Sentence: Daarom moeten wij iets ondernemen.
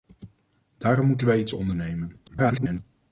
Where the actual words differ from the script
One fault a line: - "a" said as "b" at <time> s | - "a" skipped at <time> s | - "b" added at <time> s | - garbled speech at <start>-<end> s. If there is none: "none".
- garbled speech at 2.3-2.8 s